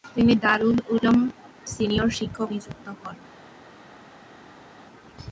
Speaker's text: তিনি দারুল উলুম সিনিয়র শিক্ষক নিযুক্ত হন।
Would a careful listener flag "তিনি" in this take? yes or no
no